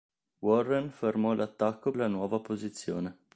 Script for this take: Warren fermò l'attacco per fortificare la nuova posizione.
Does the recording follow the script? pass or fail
fail